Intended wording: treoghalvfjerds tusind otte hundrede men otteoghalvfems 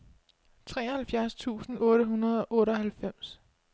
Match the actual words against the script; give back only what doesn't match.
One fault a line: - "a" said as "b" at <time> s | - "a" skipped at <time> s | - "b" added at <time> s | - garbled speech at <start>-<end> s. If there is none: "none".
- "men" said as "og" at 2.4 s